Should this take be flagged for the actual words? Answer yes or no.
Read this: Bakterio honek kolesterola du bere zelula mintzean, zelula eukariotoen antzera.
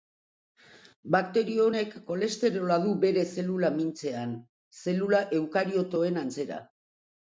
no